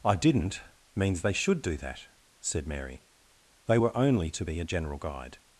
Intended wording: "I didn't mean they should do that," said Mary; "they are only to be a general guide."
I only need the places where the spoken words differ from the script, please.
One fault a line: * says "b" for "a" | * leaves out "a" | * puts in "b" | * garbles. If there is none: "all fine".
* says "means" for "mean"
* says "were" for "are"